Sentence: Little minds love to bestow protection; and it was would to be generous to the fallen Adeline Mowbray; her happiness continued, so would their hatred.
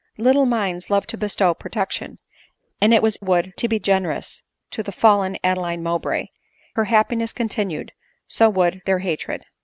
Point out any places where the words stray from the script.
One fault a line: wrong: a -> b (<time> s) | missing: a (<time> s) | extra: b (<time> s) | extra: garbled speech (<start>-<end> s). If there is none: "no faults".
no faults